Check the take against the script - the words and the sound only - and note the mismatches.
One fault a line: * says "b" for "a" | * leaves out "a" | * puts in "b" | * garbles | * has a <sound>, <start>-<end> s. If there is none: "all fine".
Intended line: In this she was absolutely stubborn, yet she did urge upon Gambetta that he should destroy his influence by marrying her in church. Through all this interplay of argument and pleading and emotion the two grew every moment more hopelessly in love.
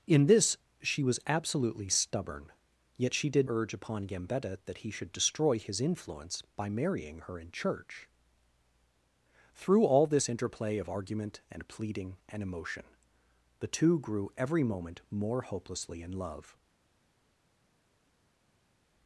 all fine